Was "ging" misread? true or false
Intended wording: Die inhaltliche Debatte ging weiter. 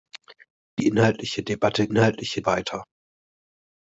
true